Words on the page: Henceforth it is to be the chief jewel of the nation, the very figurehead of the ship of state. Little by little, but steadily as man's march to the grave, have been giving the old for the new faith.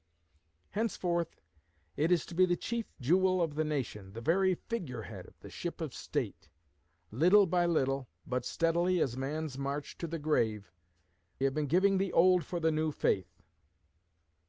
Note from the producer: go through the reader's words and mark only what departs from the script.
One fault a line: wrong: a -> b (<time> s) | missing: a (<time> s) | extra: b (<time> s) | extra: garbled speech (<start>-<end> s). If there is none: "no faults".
no faults